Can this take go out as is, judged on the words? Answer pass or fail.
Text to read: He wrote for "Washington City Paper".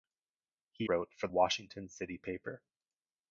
pass